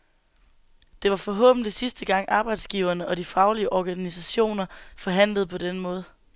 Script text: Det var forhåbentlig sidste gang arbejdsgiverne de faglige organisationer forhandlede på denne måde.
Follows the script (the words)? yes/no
no